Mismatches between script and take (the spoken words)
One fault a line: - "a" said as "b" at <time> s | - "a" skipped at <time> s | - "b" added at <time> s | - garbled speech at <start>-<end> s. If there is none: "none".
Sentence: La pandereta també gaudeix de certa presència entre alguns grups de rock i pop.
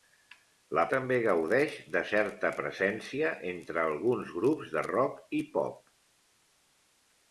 - "pandereta" skipped at 0.8 s